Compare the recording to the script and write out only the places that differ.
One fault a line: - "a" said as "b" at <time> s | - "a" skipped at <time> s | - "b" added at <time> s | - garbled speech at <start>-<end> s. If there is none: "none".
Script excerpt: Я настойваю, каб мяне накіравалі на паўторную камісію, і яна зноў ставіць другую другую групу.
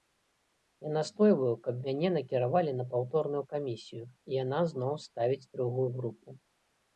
- "другую" skipped at 5.9 s